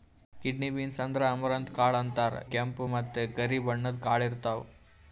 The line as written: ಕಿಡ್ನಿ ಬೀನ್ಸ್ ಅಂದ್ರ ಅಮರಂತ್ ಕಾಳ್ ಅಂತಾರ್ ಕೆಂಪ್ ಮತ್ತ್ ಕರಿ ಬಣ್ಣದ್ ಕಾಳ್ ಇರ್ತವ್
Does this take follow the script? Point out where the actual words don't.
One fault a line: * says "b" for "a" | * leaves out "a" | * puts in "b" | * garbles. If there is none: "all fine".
all fine